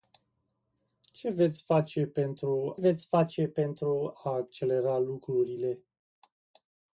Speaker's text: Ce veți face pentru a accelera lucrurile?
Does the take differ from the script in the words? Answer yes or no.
yes